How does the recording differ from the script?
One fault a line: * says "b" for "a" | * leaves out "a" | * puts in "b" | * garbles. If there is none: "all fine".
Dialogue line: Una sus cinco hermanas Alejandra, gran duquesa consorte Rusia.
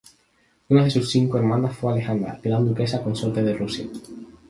* puts in "de"
* puts in "fue"
* puts in "de"